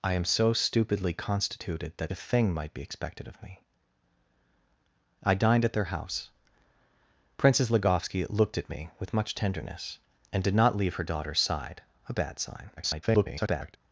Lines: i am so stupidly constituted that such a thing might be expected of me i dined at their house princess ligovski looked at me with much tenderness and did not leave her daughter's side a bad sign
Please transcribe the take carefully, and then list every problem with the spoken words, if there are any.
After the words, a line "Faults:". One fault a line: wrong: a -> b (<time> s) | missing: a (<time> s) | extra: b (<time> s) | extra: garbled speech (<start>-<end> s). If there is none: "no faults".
i am so stupidly constituted that a thing might be expected of me i dined at their house princess ligovski looked at me with much tenderness and did not leave her daughter's side a bad sign [garbled]
Faults:
missing: such (2.1 s)
extra: garbled speech (12.8-13.8 s)